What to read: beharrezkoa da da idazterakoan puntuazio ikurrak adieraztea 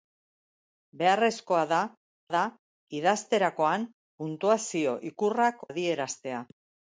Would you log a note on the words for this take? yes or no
no